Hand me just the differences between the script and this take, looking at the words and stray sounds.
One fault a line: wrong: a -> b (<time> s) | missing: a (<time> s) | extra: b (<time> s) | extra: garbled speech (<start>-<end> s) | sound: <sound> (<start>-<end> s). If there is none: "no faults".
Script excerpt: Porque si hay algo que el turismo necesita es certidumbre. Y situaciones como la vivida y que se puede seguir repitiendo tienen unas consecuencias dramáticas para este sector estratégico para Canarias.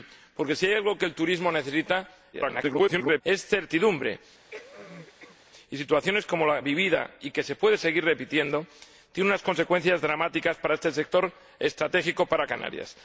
extra: garbled speech (2.3-3.2 s)
sound: cough (4.5-5.4 s)